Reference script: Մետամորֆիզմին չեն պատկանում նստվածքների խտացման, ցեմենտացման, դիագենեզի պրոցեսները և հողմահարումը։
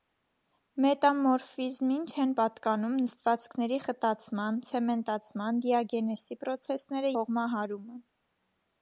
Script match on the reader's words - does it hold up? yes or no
no